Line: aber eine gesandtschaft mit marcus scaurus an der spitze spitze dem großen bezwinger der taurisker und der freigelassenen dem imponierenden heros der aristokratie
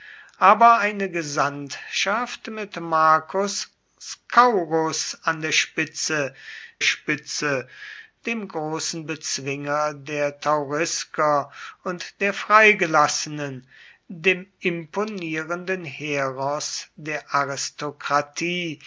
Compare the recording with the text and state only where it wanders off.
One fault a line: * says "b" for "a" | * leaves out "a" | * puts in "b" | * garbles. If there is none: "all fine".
all fine